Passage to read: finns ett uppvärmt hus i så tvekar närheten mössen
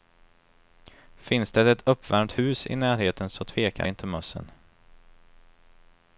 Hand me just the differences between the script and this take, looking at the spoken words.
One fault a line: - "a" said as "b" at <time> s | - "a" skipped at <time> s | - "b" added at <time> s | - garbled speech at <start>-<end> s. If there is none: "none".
- "det" added at 1.5 s
- "närheten" added at 2.8 s
- "närheten" said as "inte" at 3.8 s